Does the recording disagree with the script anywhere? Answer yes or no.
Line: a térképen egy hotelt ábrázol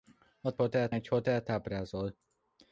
yes